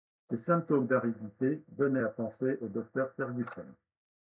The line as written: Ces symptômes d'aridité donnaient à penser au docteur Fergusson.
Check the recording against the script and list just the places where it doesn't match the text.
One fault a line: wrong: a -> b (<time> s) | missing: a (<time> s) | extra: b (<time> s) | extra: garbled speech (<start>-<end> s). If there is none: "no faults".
no faults